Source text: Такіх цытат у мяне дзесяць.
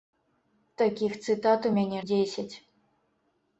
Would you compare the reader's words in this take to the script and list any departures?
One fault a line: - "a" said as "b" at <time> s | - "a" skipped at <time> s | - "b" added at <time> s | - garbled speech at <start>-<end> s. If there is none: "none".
none